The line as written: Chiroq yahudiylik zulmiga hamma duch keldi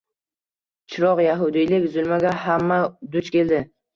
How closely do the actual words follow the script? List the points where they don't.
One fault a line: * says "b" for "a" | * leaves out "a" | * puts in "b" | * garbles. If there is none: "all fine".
all fine